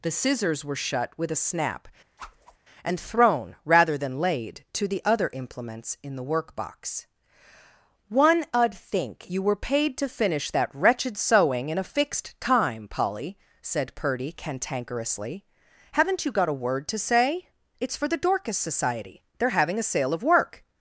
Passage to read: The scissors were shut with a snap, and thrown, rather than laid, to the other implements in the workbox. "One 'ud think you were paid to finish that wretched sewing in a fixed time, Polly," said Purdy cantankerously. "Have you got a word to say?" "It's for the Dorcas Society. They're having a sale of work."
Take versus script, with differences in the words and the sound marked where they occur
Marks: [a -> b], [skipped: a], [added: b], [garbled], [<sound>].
The scissors were shut with a snap, [whoosh] and thrown, rather than laid, to the other implements in the workbox. "One 'ud think you were paid to finish that wretched sewing in a fixed time, Polly," said Purdy cantankerously. ["Have -> Haven't] you got a word to say?" "It's for the Dorcas Society. They're having a sale of work."